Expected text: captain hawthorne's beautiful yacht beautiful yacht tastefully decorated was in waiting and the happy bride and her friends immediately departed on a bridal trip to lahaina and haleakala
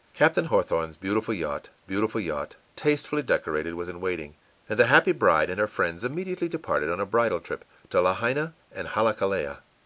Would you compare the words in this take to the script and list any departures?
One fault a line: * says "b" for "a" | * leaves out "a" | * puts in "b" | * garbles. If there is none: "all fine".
all fine